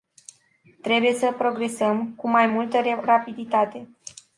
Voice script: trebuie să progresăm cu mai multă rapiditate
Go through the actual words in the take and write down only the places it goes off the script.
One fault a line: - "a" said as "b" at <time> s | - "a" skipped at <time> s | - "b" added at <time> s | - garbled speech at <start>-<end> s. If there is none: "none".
none